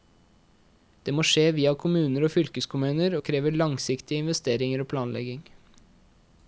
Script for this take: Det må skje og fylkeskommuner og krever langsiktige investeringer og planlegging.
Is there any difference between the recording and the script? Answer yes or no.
yes